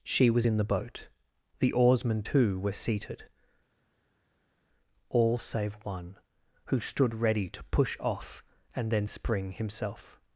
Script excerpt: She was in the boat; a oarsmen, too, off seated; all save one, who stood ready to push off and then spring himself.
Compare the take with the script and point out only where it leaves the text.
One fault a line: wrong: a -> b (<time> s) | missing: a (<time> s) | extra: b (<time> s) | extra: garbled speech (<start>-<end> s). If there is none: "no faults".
wrong: a -> the (1.6 s)
wrong: off -> were (2.6 s)